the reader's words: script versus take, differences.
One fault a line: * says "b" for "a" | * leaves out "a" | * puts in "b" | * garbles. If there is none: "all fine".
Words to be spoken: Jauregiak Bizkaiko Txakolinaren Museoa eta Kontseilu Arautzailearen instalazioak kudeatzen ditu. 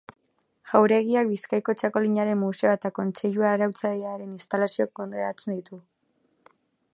all fine